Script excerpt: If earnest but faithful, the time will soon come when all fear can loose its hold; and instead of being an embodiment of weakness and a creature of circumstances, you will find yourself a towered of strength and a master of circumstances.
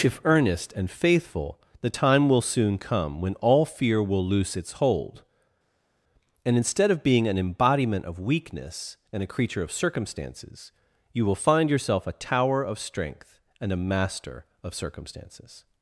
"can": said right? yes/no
no